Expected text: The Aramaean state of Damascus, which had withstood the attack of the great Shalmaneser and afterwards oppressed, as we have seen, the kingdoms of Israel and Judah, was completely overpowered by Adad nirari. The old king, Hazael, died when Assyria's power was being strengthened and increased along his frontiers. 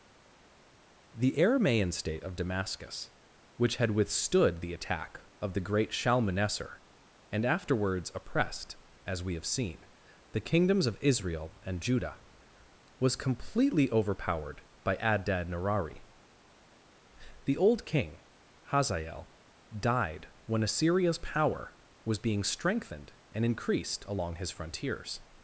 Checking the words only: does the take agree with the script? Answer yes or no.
yes